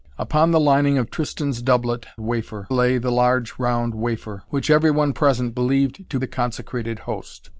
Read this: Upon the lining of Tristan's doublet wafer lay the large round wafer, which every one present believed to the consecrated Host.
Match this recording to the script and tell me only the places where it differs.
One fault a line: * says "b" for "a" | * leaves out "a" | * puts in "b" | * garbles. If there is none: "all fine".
all fine